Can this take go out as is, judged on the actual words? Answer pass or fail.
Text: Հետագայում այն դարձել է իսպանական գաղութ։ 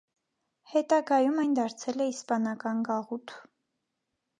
pass